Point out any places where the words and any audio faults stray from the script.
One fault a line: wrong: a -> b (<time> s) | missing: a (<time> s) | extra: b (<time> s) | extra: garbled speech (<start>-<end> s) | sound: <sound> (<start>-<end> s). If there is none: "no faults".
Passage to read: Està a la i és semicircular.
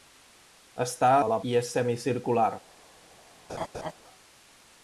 sound: laugh (3.5-3.9 s)